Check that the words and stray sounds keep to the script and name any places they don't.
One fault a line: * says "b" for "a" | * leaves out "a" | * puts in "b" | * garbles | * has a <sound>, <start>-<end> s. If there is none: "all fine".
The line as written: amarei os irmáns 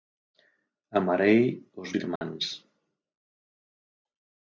* has a dropout, 2.2-2.2 s